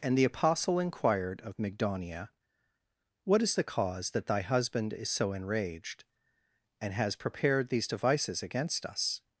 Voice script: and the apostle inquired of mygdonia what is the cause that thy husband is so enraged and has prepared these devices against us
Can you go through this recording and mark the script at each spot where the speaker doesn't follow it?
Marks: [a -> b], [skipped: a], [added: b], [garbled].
and the apostle inquired of mygdonia what is the cause that thy husband is so enraged and has prepared these devices against us